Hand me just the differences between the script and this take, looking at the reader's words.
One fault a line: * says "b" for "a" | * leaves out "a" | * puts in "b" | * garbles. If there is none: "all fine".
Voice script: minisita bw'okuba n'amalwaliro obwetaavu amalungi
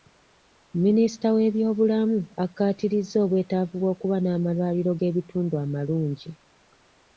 * puts in "w'ebyobulamu akkaatirizza obwetaavu"
* says "g'ebitundu" for "obwetaavu"